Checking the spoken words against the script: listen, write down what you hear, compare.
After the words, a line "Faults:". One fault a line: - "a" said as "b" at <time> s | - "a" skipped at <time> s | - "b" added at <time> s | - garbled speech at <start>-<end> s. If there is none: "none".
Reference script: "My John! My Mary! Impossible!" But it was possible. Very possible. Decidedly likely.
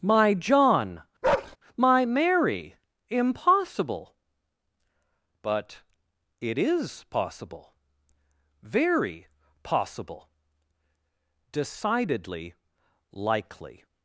"My John! My Mary! Impossible!" But it is possible. Very possible. Decidedly likely.
Faults:
- "was" said as "is" at 6.6 s